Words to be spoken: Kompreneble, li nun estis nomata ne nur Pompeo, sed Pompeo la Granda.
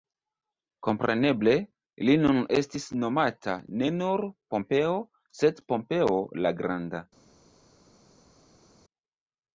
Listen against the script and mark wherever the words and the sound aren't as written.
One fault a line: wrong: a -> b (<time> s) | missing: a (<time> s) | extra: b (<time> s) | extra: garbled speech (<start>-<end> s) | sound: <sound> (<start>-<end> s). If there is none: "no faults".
no faults